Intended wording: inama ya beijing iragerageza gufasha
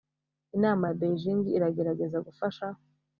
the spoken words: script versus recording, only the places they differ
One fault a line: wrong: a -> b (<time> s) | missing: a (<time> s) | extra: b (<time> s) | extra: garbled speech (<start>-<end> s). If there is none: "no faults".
no faults